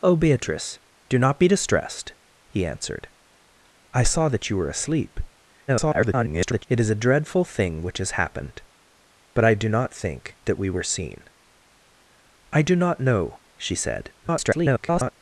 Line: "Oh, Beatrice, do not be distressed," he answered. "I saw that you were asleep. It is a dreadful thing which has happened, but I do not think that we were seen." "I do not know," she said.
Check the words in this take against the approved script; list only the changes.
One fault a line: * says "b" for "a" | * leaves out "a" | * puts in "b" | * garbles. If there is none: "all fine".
* garbles
* garbles